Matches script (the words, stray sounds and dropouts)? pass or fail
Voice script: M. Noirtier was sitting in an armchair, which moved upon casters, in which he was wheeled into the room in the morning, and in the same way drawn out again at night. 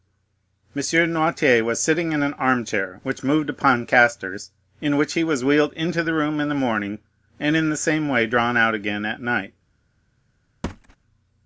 fail